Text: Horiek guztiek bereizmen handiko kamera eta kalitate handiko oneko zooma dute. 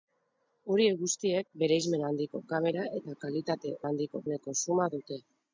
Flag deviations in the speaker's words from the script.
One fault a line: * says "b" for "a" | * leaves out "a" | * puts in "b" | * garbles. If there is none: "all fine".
all fine